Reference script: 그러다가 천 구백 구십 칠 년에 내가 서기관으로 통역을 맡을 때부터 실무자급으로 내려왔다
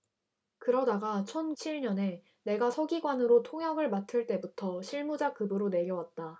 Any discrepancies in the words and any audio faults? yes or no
yes